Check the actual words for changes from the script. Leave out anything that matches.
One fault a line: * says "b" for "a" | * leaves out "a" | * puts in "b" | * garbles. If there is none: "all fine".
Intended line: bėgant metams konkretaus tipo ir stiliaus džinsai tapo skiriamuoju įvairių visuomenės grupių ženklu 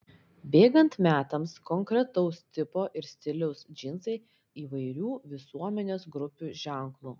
* leaves out "tapo skiriamuoju"